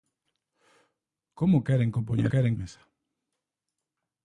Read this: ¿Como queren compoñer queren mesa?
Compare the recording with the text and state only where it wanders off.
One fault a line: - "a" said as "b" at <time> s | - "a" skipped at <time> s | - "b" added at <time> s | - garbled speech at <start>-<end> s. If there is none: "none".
none